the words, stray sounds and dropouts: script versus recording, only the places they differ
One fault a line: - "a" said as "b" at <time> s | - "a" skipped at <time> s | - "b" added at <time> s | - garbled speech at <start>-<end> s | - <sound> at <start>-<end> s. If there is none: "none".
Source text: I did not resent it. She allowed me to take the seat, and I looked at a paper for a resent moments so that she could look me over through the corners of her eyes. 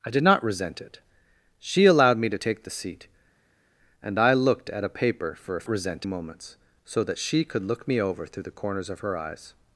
none